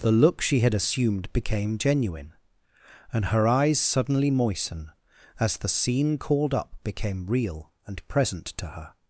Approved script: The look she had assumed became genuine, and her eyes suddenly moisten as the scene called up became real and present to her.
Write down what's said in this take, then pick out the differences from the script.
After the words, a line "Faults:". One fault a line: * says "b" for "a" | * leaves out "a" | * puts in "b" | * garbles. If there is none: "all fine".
The look she had assumed became genuine, and her eyes suddenly moisten as the scene called up became real and present to her.
Faults:
all fine